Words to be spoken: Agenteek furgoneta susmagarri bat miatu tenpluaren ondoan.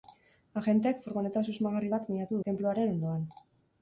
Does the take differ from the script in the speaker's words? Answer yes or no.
no